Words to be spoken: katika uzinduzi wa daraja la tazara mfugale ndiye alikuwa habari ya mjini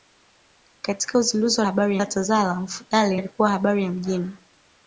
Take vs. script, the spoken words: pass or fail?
fail